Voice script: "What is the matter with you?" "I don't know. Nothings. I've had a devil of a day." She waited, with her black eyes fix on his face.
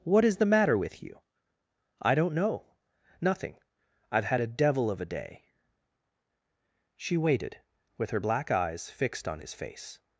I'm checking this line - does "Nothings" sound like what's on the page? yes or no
no